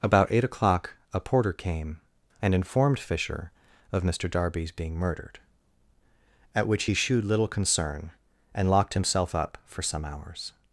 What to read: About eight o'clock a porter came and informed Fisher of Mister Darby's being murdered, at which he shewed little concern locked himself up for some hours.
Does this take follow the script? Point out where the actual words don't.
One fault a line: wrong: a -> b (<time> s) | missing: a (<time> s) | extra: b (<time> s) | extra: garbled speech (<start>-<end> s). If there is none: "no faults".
extra: and (8.5 s)